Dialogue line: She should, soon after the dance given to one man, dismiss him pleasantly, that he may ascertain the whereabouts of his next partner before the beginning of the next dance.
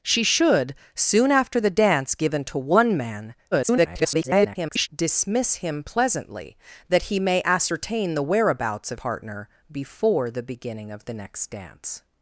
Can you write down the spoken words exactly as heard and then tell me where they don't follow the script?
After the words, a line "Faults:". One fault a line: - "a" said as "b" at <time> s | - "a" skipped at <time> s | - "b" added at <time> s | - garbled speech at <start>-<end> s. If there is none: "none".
She should, soon after the dance given to one man, [garbled] dismiss him pleasantly, that he may ascertain the whereabouts of partner before the beginning of the next dance.
Faults:
- garbled speech at 3.5-4.9 s
- "his next" skipped at 9.0 s